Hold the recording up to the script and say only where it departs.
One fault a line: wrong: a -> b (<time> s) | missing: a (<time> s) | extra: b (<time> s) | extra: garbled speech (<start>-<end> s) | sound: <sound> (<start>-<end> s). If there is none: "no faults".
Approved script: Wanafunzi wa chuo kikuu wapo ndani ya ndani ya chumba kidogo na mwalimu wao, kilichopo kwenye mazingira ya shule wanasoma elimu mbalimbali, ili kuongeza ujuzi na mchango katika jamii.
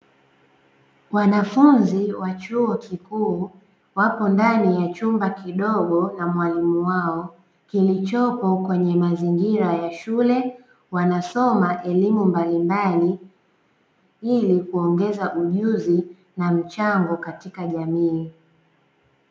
missing: ndani ya (4.9 s)